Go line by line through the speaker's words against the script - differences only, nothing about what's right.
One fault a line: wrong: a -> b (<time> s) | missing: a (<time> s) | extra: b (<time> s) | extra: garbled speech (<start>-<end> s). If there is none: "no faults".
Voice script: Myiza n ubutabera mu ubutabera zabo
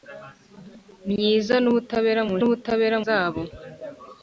no faults